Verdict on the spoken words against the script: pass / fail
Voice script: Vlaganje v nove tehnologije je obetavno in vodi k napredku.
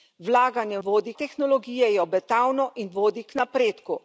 fail